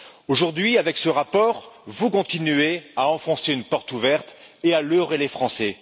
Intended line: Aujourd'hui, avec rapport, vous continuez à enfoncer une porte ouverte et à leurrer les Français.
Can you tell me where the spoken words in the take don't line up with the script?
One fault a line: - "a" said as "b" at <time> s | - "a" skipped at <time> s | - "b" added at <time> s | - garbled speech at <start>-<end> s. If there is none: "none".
- "ce" added at 1.0 s